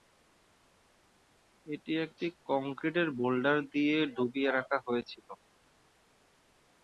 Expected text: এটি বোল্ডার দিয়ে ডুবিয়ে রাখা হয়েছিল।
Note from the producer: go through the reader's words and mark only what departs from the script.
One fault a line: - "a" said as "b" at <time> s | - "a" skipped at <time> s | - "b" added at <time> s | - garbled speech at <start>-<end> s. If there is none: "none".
- "একটি কংক্রিটের" added at 2.0 s